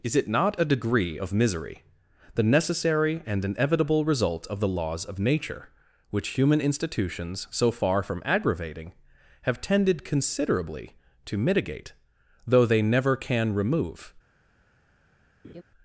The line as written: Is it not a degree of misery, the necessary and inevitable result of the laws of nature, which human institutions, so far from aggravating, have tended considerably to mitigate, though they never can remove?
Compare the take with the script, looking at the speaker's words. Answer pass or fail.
pass